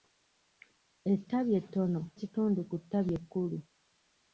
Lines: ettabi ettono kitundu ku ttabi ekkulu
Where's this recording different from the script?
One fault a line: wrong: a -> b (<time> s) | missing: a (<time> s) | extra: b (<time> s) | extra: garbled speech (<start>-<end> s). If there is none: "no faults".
no faults